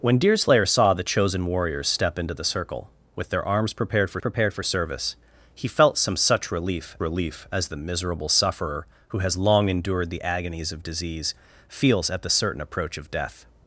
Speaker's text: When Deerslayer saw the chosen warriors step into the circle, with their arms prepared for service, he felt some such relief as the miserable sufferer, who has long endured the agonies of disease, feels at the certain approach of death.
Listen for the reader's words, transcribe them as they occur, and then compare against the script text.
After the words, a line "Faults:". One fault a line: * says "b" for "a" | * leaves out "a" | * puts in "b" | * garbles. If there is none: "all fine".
When Deerslayer saw the chosen warriors step into the circle, with their arms prepared for prepared for service, he felt some such relief relief as the miserable sufferer, who has long endured the agonies of disease, feels at the certain approach of death.
Faults:
* puts in "prepared for"
* puts in "relief"